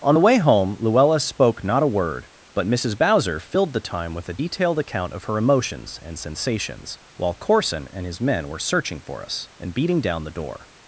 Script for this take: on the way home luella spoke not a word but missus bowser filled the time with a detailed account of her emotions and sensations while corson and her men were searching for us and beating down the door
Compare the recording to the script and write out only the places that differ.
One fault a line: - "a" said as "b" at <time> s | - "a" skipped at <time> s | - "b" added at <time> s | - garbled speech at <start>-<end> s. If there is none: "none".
- "her" said as "his" at 8.0 s